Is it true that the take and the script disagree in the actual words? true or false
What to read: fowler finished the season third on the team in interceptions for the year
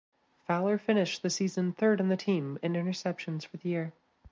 false